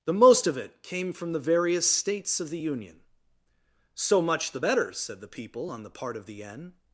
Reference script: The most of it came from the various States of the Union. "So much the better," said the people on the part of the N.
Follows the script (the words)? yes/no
yes